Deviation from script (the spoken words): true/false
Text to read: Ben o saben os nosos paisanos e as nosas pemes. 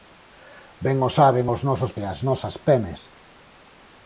true